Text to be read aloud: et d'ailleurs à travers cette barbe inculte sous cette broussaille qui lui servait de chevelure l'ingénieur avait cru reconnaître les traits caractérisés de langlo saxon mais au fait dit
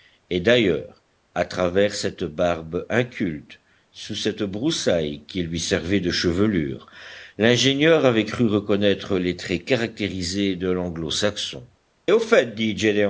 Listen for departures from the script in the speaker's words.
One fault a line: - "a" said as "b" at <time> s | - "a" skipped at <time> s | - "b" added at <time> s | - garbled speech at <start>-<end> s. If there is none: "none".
- "mais" skipped at 11.7 s